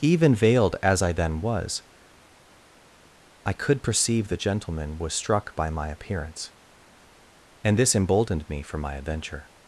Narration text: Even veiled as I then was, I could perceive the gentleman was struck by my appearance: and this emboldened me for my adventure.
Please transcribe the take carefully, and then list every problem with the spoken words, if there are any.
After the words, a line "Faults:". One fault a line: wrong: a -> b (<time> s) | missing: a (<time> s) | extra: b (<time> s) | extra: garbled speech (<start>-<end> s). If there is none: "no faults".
Even veiled as I then was, I could perceive the gentleman was struck by my appearance: and this emboldened me for my adventure.
Faults:
no faults